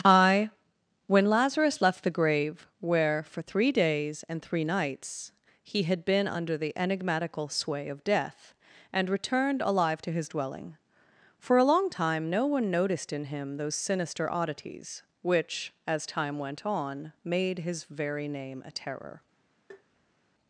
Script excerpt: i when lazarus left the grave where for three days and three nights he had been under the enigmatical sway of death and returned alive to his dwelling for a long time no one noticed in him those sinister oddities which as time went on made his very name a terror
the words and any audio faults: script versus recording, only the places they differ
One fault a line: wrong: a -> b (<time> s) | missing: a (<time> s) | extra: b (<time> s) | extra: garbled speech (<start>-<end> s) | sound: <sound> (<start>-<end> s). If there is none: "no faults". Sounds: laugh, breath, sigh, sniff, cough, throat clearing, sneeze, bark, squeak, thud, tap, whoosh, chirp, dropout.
sound: tap (19.7-20.2 s)